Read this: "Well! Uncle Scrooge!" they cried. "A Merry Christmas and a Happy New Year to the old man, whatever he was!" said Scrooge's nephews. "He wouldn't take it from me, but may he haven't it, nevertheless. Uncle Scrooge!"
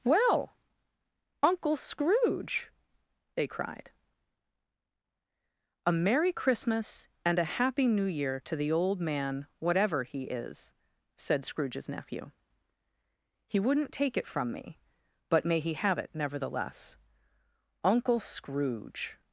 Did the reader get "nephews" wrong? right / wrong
wrong